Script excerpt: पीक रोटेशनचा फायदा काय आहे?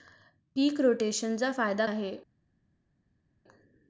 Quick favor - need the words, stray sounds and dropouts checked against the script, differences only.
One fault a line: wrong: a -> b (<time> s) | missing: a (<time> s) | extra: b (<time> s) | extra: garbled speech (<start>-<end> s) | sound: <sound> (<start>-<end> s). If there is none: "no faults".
missing: काय (1.9 s)